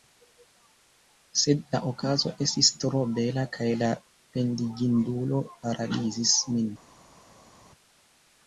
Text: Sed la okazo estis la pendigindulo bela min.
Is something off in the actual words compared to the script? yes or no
yes